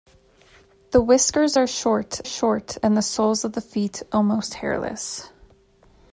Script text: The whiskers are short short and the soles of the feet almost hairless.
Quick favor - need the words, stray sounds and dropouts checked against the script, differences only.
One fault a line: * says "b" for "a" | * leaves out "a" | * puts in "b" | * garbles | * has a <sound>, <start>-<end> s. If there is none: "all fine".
all fine